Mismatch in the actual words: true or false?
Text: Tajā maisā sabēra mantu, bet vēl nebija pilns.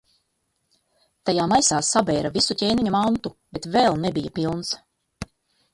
true